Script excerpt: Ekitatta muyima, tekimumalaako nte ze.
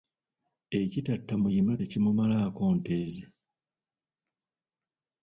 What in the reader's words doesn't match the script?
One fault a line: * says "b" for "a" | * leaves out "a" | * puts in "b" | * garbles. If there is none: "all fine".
all fine